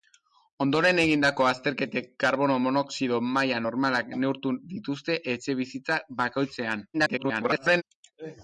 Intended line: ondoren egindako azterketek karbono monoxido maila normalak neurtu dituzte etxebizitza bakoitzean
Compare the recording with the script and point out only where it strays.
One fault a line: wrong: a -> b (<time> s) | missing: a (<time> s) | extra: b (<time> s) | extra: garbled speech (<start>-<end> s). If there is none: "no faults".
extra: garbled speech (6.9-7.8 s)